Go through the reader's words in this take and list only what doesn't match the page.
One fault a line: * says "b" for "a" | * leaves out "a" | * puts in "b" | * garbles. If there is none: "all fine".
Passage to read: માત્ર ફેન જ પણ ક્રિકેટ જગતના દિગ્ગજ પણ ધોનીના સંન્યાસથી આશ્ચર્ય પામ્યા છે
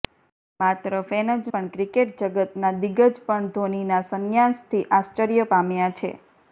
all fine